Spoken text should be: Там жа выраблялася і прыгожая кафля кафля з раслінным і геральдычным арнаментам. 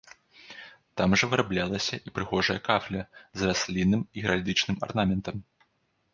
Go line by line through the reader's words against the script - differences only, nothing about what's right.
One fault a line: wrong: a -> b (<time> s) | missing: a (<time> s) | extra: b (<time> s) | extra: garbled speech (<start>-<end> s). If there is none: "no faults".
missing: кафля (3.0 s)